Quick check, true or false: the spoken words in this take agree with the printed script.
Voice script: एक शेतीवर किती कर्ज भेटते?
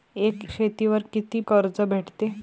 true